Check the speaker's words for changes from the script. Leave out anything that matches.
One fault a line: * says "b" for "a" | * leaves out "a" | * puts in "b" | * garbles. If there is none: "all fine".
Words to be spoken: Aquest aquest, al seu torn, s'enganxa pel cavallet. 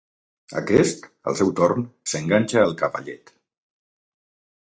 * leaves out "aquest"
* says "al" for "pel"